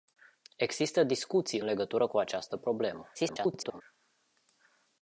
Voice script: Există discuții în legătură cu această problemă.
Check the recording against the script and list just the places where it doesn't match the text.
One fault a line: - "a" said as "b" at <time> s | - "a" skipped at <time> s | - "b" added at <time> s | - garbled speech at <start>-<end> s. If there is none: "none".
- "în" skipped at 1.6 s
- garbled speech at 3.1-3.8 s